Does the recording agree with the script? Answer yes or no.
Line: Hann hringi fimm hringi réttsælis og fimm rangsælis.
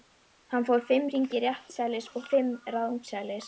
no